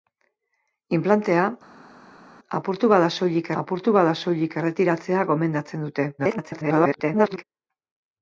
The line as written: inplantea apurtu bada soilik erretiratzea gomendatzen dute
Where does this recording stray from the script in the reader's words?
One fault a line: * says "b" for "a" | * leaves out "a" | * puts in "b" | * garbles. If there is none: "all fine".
* puts in "apurtu bada soilik"
* garbles